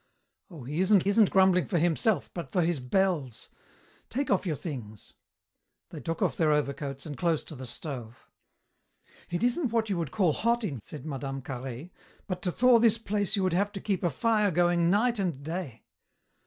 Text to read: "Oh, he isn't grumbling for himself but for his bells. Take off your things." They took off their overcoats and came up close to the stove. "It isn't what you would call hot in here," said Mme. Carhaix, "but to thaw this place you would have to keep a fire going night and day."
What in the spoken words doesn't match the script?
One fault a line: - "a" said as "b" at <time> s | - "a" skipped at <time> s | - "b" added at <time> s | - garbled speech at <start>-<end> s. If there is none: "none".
- "isn't" added at 1.1 s
- "came up" skipped at 7.2 s
- "here" skipped at 10.8 s